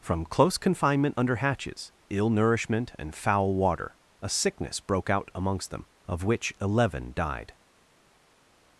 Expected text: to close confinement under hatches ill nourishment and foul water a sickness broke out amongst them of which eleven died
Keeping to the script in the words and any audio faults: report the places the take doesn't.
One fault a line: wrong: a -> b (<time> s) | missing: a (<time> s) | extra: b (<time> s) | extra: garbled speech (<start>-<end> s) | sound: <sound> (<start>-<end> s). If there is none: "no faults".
wrong: to -> from (0.0 s)